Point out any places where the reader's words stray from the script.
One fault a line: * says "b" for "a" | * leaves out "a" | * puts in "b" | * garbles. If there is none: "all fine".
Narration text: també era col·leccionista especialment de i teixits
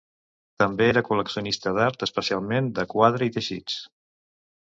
* puts in "d'art"
* puts in "quadre"